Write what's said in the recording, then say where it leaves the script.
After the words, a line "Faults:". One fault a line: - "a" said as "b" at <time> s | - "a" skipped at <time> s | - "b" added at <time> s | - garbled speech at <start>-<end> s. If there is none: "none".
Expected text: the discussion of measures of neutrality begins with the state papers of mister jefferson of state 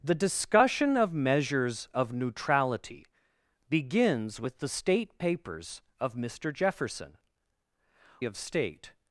the discussion of measures of neutrality begins with the state papers of mister jefferson of state
Faults:
none